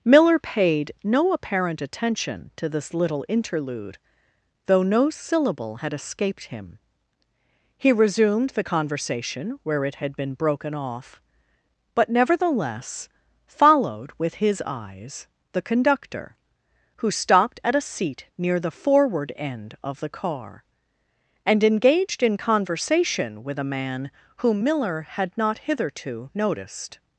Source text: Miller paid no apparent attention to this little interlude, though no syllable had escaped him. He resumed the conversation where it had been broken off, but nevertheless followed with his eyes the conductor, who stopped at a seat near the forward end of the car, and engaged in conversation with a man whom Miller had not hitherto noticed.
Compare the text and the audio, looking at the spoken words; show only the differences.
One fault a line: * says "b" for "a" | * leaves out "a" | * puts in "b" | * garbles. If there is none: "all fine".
all fine